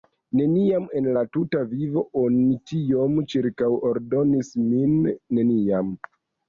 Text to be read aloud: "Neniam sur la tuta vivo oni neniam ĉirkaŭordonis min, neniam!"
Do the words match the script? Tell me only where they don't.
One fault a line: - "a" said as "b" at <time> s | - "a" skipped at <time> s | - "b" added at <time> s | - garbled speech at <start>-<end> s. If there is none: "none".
- "sur" said as "en" at 1.0 s
- "neniam" said as "tiom" at 2.7 s